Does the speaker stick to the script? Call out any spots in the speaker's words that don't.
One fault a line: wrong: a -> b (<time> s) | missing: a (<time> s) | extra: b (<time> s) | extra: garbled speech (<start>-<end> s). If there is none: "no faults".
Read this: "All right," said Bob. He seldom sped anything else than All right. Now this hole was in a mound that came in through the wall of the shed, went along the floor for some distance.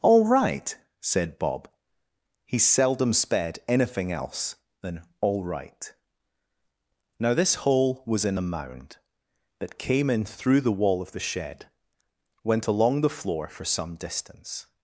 no faults